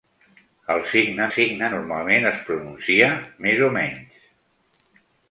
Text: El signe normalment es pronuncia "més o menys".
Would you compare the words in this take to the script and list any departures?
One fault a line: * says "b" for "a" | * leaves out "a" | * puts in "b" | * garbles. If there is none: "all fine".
* puts in "signe"